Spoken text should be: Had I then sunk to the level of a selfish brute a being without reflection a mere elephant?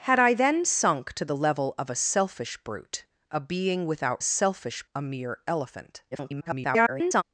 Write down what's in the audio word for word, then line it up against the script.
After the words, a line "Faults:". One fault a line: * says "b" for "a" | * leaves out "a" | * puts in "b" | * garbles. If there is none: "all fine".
Had I then sunk to the level of a selfish brute a being without selfish a mere elephant? [garbled]
Faults:
* says "selfish" for "reflection"
* garbles